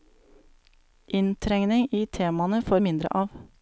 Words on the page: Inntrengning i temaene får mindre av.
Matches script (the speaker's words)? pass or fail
pass